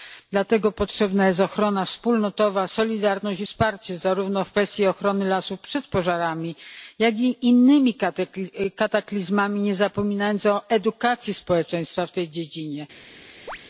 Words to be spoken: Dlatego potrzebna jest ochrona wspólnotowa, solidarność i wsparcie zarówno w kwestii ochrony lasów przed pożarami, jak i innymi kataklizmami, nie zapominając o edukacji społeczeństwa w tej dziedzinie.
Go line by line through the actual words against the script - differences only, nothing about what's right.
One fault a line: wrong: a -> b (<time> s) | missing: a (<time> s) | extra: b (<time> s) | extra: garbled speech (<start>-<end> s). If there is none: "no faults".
no faults